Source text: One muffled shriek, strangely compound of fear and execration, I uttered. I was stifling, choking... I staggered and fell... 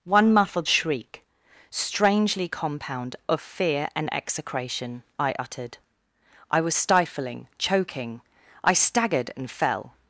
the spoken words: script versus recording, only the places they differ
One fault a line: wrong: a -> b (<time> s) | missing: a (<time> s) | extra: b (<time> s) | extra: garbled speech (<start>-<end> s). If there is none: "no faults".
no faults